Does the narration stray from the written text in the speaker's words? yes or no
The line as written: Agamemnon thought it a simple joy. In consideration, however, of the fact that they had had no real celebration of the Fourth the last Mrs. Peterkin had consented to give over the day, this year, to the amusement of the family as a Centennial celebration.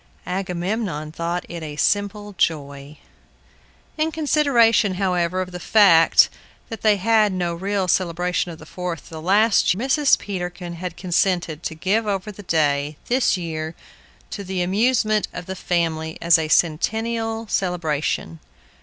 no